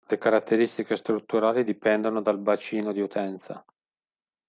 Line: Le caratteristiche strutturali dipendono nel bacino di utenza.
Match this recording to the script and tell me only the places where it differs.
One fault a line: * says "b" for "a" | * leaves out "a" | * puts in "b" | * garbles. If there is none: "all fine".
* says "dal" for "nel"